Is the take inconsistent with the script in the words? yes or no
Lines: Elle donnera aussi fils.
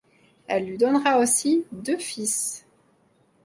yes